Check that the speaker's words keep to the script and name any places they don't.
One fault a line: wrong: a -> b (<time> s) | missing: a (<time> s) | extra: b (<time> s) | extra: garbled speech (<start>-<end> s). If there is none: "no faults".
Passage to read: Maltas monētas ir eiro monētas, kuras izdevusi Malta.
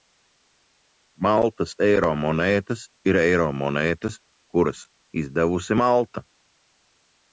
extra: eiro (1.9 s)